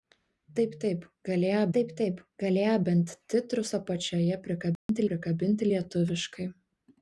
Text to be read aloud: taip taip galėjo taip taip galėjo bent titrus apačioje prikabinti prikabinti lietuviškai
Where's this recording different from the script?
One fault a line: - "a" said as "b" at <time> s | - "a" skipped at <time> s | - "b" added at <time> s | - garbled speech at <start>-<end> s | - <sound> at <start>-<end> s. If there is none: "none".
- dropout at 4.8-4.9 s